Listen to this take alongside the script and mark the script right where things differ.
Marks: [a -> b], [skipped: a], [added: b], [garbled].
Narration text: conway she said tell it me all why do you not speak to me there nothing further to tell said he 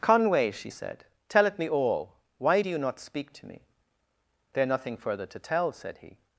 conway she said tell it me all why do you not speak to me there nothing further to tell said he